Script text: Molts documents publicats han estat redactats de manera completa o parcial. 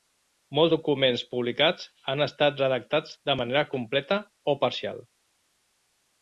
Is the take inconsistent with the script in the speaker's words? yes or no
no